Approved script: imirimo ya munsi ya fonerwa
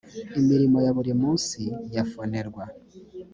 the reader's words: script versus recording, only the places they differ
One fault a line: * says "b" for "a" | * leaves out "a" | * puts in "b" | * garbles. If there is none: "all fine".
* puts in "buri"